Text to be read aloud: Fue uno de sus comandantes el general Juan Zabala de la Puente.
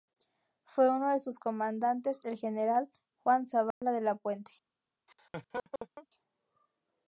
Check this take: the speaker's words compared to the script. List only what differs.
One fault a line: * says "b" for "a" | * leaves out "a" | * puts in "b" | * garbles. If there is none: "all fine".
all fine